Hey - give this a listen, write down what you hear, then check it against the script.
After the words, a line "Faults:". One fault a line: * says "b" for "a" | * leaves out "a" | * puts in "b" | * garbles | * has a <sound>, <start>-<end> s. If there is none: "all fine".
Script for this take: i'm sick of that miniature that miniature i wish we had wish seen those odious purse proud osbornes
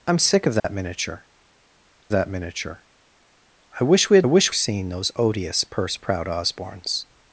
i'm sick of that miniature that miniature i wish we had wish seen those odious purse proud osbornes
Faults:
* has a dropout, 0.6-0.6 s